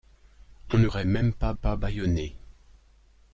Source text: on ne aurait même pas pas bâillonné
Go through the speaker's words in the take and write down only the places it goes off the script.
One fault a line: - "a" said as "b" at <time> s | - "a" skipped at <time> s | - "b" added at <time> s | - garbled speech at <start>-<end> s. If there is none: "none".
none